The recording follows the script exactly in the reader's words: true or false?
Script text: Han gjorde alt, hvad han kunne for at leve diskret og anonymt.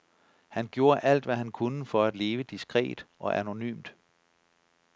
true